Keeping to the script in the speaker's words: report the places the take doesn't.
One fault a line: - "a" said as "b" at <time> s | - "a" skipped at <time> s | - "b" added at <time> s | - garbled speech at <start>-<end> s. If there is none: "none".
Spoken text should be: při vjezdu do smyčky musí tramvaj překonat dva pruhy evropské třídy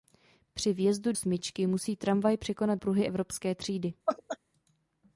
- "do" skipped at 1.1 s
- "dva" skipped at 2.8 s